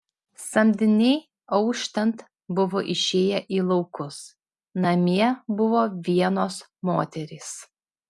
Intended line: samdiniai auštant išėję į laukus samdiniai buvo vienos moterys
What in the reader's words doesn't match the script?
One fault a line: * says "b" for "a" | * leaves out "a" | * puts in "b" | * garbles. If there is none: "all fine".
* puts in "buvo"
* says "namie" for "samdiniai"